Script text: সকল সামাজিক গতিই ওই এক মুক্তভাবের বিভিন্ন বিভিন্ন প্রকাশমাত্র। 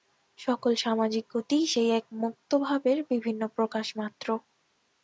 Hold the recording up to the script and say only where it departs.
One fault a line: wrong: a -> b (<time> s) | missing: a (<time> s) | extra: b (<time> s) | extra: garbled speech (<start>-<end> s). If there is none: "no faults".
wrong: ওই -> সেই (1.7 s)
missing: বিভিন্ন (3.4 s)